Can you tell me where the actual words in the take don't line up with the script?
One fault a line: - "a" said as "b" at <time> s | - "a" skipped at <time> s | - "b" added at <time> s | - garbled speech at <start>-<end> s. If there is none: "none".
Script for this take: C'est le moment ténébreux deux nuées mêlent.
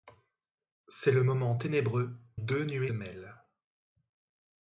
none